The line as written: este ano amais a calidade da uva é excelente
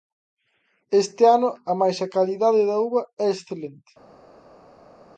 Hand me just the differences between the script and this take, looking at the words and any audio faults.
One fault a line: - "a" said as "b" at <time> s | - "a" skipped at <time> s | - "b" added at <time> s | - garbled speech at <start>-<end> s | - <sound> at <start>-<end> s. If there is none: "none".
none